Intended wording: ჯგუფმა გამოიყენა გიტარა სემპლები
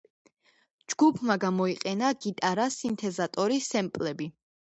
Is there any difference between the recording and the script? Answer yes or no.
yes